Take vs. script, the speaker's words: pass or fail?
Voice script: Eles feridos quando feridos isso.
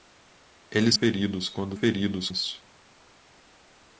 pass